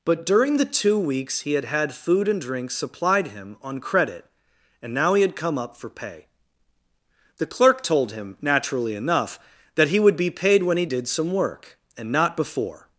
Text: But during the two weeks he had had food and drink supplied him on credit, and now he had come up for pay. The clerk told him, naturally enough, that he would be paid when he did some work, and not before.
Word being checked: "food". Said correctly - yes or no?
yes